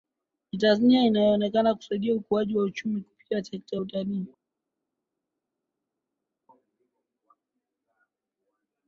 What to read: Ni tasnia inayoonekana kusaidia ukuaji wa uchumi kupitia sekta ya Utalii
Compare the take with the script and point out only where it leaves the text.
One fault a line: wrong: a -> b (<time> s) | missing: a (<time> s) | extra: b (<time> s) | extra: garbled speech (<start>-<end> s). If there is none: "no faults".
no faults